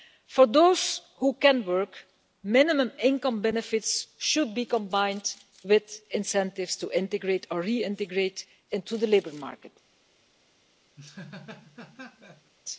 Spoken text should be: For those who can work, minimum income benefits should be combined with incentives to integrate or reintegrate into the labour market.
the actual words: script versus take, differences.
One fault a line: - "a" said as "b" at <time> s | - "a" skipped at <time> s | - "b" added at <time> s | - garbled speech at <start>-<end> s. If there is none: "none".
none